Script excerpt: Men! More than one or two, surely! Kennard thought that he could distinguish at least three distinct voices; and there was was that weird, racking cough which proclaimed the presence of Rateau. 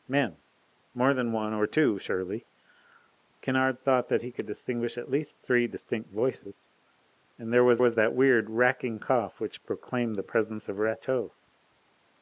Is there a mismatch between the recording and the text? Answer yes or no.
no